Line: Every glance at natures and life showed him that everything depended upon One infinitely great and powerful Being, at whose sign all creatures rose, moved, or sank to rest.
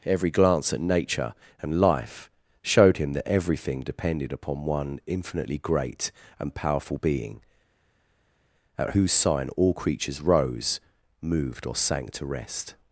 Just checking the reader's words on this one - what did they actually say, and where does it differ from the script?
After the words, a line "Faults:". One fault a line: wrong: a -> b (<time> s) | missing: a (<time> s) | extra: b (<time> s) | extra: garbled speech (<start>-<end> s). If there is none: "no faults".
Every glance at nature and life showed him that everything depended upon One infinitely great and powerful Being, at whose sign all creatures rose, moved, or sank to rest.
Faults:
wrong: natures -> nature (0.8 s)